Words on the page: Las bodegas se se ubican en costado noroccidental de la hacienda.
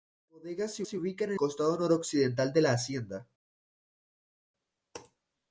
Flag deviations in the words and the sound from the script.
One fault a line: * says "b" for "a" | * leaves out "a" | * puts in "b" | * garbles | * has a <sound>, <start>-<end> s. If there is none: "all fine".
all fine